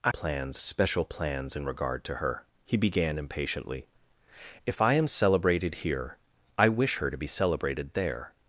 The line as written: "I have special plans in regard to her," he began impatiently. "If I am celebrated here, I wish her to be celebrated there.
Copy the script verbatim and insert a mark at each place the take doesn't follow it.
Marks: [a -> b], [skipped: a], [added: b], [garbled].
"I [have -> plans] special plans in regard to her," he began impatiently. "If I am celebrated here, I wish her to be celebrated there.